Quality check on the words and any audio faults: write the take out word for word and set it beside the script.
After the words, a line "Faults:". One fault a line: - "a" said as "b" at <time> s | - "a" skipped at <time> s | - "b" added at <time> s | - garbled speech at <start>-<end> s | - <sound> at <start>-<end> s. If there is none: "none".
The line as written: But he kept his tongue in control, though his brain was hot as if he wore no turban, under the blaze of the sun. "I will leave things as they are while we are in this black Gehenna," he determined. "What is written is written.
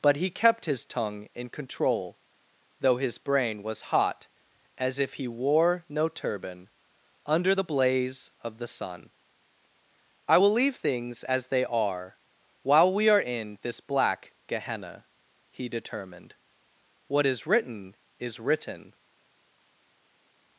But he kept his tongue in control, though his brain was hot as if he wore no turban, under the blaze of the sun. "I will leave things as they are while we are in this black Gehenna," he determined. "What is written is written.
Faults:
none